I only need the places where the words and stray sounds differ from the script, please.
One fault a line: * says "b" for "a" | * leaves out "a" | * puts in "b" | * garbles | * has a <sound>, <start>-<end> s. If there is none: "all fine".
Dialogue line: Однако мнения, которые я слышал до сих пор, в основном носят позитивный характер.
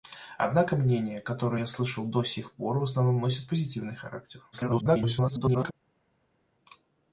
* garbles